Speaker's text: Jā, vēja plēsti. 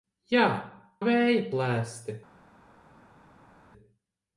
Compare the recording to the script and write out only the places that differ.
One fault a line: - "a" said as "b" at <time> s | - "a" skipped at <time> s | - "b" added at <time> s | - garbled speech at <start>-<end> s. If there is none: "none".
none